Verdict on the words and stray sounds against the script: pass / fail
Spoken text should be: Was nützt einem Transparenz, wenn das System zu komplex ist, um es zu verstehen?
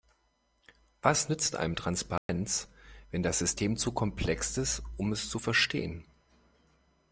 fail